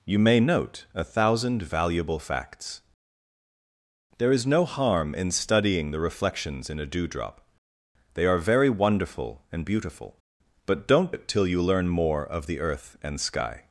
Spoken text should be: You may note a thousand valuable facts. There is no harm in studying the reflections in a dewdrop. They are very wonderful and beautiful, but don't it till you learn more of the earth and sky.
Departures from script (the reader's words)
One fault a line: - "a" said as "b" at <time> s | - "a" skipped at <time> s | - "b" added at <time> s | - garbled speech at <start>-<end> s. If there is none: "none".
none